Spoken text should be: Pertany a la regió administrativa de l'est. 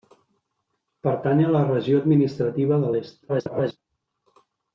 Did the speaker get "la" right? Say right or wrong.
right